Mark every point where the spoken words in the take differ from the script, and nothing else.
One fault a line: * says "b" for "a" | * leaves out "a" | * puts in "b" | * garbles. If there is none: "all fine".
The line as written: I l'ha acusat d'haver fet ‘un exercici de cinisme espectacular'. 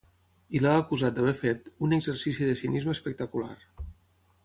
all fine